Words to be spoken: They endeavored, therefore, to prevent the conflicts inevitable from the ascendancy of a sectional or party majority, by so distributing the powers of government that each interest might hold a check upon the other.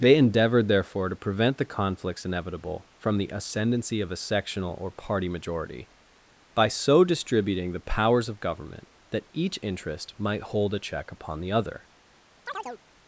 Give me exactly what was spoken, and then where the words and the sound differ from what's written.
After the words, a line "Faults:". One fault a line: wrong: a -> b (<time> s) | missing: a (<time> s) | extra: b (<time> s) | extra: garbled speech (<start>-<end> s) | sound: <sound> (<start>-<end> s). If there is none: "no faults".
They endeavored, therefore, to prevent the conflicts inevitable from the ascendancy of a sectional or party majority, by so distributing the powers of government that each interest might hold a check upon the other.
Faults:
sound: chirp (12.5-12.8 s)